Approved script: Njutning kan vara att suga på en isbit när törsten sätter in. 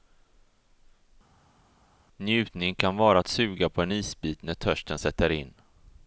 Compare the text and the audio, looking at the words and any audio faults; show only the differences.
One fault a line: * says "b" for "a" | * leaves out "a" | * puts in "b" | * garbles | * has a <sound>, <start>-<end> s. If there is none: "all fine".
all fine